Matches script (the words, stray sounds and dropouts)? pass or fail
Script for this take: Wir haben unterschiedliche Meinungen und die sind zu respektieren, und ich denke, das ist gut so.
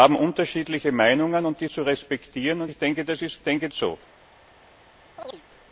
fail